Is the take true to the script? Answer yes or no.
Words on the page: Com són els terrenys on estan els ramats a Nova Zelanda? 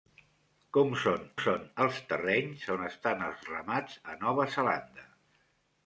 no